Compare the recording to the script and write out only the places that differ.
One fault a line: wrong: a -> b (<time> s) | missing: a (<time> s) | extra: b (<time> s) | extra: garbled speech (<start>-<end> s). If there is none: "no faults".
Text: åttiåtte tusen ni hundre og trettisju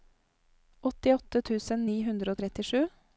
no faults